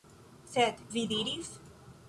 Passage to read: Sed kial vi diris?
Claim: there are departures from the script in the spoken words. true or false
true